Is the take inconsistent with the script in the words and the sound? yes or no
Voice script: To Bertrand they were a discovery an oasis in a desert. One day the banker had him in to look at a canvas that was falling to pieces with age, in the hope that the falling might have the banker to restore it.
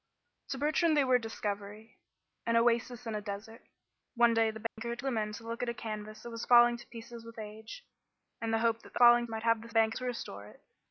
yes